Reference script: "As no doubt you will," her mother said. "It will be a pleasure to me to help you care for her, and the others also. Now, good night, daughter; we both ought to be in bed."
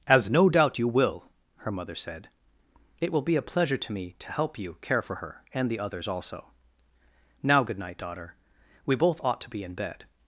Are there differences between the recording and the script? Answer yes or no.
no